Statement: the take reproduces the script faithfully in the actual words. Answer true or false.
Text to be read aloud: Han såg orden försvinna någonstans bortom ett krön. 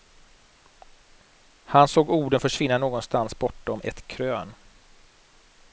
true